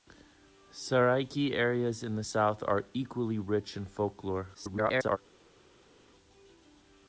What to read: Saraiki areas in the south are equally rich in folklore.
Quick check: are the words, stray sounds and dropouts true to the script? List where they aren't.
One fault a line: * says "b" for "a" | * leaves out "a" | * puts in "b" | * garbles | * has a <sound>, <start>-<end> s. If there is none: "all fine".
* garbles